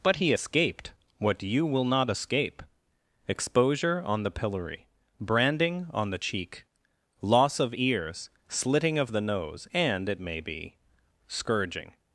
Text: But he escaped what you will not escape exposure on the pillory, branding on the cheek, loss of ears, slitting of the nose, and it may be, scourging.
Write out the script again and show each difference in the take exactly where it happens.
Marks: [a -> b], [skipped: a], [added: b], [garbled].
But he escaped what you will not escape exposure on the pillory, branding on the cheek, loss of ears, slitting of the nose, and it may be, scourging.